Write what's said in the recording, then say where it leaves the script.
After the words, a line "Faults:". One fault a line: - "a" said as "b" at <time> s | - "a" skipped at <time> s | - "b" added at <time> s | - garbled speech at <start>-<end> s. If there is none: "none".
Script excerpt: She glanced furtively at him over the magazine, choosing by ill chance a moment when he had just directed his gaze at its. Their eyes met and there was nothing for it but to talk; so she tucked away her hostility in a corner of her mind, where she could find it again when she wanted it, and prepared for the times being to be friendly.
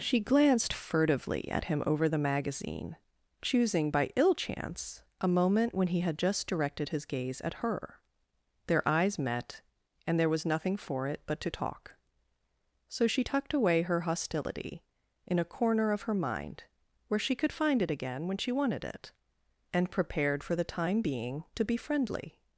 She glanced furtively at him over the magazine, choosing by ill chance a moment when he had just directed his gaze at her. Their eyes met and there was nothing for it but to talk; so she tucked away her hostility in a corner of her mind, where she could find it again when she wanted it, and prepared for the time being to be friendly.
Faults:
- "its" said as "her" at 7.6 s
- "times" said as "time" at 20.6 s